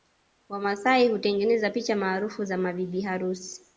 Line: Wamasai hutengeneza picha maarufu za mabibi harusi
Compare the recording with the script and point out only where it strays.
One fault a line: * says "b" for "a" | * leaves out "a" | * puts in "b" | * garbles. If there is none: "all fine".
all fine